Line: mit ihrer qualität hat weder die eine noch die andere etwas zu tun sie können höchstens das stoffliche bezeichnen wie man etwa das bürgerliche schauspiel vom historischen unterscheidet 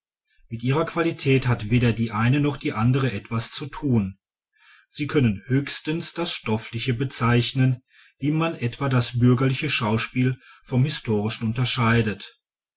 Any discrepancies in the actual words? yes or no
no